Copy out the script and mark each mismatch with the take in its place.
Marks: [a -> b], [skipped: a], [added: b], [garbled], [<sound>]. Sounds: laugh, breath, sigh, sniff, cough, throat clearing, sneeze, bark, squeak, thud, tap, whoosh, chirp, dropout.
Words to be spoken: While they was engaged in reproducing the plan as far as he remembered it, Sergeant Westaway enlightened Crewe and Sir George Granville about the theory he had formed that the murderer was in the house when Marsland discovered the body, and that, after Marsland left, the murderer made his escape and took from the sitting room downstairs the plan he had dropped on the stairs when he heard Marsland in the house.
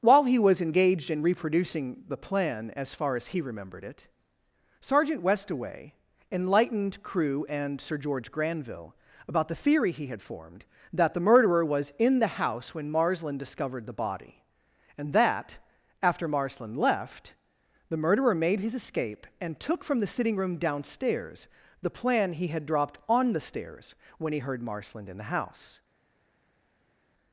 While [they -> he] was engaged in reproducing the plan as far as he remembered it, Sergeant Westaway enlightened Crewe and Sir George Granville about the theory he had formed that the murderer was in the house when Marsland discovered the body, and that, after Marsland left, the murderer made his escape and took from the sitting room downstairs the plan he had dropped on the stairs when he heard Marsland in the house.